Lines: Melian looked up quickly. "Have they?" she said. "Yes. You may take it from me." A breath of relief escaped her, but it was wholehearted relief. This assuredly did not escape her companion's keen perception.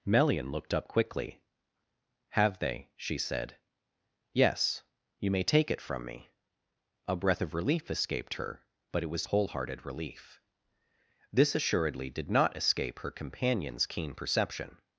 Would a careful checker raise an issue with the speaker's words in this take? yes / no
no